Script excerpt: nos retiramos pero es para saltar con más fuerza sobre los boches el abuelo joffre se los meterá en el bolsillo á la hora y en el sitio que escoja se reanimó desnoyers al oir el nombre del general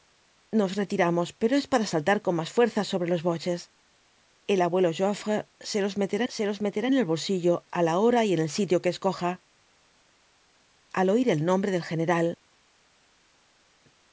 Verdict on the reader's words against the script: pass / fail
fail